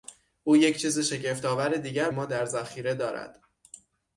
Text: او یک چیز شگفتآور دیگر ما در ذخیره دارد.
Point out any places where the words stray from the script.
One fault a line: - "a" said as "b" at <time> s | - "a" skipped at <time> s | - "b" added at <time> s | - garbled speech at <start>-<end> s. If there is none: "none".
none